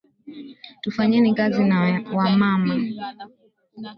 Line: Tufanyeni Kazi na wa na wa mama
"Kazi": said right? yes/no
yes